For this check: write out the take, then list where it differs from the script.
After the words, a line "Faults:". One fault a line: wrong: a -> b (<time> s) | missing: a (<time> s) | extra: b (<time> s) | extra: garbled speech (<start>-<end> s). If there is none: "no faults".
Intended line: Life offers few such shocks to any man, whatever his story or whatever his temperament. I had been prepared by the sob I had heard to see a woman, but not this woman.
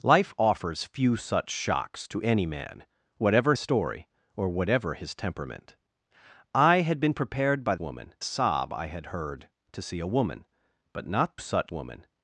Life offers few such shocks to any man, whatever story or whatever his temperament. I had been prepared by woman sob I had heard to see a woman, but not such woman.
Faults:
missing: his (3.5 s)
wrong: the -> woman (7.8 s)
wrong: this -> such (11.4 s)